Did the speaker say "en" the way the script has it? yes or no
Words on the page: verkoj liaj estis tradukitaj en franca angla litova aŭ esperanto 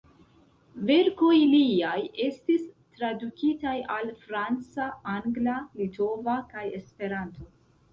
no